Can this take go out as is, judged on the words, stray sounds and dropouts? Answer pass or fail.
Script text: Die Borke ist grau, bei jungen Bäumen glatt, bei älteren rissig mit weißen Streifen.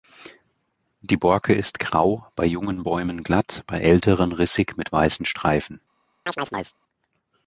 fail